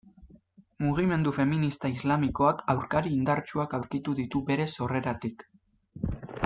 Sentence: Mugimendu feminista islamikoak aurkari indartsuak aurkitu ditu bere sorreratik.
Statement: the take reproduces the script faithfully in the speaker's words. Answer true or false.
true